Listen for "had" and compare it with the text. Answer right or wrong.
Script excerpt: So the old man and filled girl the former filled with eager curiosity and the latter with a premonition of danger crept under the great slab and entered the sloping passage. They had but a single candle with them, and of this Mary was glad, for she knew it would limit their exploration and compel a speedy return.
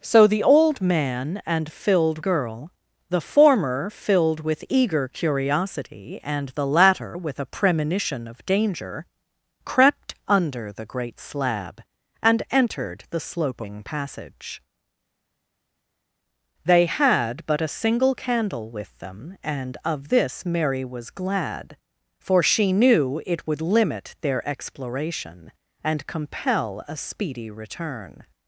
right